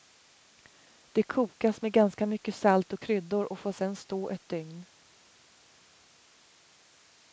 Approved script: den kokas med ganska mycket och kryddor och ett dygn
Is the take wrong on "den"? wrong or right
wrong